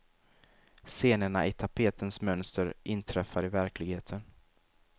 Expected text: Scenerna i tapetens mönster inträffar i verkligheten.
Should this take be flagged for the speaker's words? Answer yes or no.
no